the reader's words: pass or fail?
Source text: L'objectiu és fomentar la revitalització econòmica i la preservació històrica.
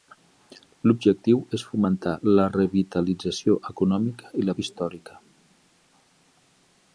fail